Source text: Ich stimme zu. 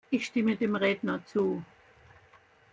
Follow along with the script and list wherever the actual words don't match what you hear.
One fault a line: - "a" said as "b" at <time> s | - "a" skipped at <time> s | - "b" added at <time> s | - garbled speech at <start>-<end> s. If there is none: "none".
- "dem Redner" added at 0.6 s